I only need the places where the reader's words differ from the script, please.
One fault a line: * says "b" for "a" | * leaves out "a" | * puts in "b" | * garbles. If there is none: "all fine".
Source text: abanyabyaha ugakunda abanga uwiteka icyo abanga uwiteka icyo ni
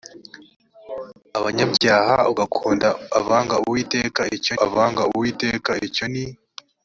all fine